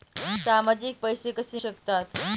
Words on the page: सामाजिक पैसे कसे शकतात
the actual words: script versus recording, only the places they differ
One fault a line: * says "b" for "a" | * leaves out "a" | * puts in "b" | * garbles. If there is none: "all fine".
all fine